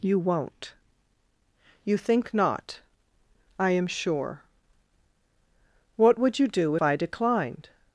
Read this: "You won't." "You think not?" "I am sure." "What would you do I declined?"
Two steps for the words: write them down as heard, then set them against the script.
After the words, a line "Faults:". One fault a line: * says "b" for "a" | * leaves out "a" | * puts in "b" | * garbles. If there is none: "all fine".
"You won't." "You think not?" "I am sure." "What would you do I declined?"
Faults:
all fine